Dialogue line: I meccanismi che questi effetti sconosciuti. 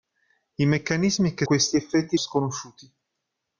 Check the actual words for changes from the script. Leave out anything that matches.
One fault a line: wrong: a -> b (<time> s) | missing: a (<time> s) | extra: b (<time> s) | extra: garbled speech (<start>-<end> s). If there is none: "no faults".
no faults